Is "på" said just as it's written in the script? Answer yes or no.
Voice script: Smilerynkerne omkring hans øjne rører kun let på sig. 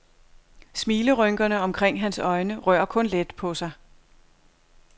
yes